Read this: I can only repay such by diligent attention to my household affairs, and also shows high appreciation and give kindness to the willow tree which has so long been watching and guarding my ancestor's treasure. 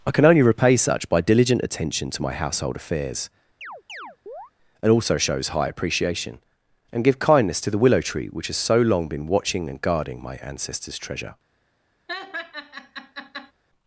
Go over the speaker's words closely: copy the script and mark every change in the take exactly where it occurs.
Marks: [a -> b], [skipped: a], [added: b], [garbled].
I can only repay such by diligent attention to my household affairs, and also shows high appreciation and give kindness to the willow tree which has so long been watching and guarding my ancestor's treasure.